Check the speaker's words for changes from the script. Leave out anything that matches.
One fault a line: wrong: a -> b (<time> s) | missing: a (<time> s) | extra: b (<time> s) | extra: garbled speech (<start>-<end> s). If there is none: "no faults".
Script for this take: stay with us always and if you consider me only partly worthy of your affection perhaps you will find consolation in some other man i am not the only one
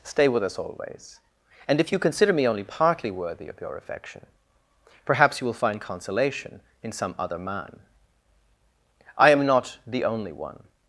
no faults